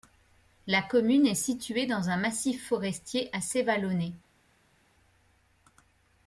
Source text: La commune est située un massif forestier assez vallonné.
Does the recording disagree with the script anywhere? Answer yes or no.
yes